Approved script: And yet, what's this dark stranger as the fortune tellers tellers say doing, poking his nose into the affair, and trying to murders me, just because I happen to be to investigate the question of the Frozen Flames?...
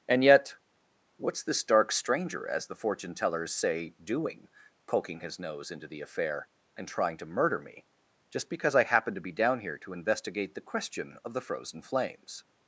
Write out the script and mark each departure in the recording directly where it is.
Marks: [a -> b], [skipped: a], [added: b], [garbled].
And yet, what's this dark stranger as the fortune tellers [skipped: tellers] say doing, poking his nose into the affair, and trying to [murders -> murder] me, just because I happen to be [added: down here] to investigate the question of the Frozen Flames?...